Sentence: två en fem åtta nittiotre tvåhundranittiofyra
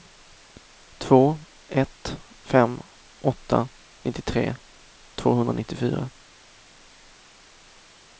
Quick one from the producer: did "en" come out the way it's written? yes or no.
no